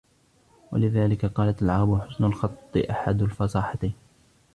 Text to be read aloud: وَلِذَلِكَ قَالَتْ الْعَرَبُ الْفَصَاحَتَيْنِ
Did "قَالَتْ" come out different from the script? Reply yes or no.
no